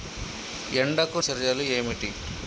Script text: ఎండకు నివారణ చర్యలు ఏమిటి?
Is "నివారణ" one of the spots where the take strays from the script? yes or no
yes